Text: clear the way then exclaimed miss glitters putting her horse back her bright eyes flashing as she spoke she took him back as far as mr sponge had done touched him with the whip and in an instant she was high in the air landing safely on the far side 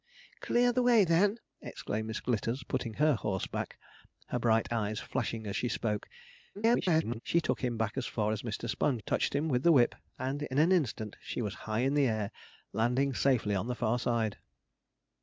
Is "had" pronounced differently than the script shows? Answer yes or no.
yes